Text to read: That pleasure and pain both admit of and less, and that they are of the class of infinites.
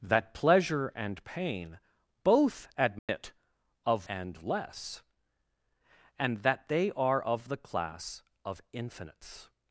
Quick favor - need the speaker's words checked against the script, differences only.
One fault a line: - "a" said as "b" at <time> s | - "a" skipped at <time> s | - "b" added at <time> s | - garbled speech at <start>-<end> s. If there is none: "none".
none